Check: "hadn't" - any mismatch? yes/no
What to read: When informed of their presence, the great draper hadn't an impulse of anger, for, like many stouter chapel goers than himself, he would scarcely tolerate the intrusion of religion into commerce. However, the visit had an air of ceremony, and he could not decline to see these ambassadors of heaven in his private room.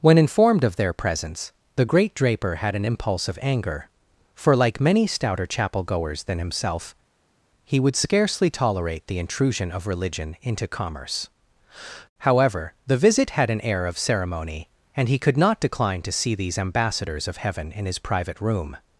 yes